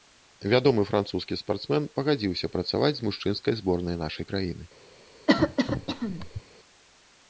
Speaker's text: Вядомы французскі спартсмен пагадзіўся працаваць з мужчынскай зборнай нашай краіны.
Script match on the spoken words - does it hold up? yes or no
yes